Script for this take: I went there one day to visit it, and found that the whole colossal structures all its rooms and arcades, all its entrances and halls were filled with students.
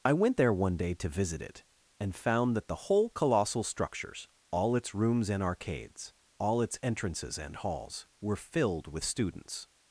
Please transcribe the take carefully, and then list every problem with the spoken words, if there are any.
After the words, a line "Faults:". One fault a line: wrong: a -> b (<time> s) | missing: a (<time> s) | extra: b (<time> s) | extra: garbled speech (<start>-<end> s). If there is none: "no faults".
I went there one day to visit it, and found that the whole colossal structures all its rooms and arcades, all its entrances and halls were filled with students.
Faults:
no faults